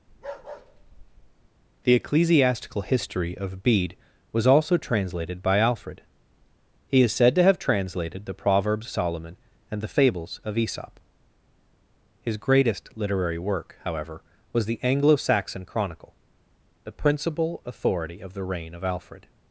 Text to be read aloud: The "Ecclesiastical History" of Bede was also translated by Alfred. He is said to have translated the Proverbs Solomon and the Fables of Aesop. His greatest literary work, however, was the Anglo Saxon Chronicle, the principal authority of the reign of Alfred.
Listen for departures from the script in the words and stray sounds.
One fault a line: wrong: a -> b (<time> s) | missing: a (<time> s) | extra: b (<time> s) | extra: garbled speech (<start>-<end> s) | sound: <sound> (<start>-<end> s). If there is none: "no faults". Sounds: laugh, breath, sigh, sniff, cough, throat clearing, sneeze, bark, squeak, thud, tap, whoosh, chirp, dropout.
sound: bark (0.1-1.5 s)